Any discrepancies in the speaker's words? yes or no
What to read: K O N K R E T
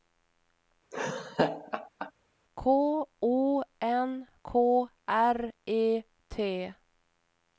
no